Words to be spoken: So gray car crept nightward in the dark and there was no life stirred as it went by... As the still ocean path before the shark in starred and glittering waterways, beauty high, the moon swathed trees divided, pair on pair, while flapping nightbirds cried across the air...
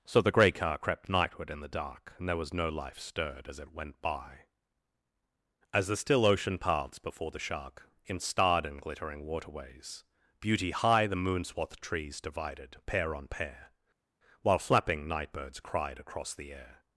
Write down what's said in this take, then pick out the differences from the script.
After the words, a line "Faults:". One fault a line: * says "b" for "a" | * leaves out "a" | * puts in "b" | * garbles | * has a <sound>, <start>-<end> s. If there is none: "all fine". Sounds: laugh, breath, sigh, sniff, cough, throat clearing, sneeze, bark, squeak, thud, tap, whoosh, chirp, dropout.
So the gray car crept nightward in the dark and there was no life stirred as it went by... As the still ocean paths before the shark in starred and glittering waterways, beauty high, the moon swathed trees divided, pair on pair, while flapping nightbirds cried across the air...
Faults:
* puts in "the"
* says "paths" for "path"